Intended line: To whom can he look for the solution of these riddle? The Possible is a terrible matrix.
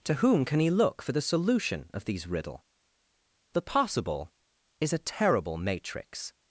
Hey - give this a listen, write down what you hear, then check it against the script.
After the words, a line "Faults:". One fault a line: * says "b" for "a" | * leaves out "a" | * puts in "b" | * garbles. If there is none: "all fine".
To whom can he look for the solution of these riddle? The Possible is a terrible matrix.
Faults:
all fine